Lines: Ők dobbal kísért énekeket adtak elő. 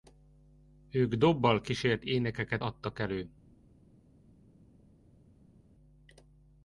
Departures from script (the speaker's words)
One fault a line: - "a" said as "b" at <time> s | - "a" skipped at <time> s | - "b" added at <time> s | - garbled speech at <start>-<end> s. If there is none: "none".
none